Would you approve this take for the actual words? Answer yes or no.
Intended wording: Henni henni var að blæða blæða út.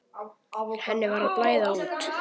no